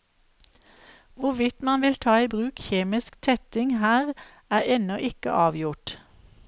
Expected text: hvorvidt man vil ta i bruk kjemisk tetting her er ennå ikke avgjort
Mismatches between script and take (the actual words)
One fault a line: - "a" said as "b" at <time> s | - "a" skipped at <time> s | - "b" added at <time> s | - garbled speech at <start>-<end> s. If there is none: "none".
none